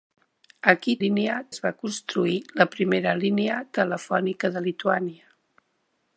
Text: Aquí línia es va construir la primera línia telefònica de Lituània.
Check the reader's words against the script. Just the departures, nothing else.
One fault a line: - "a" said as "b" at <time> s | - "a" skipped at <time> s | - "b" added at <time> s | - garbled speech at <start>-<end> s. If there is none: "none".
none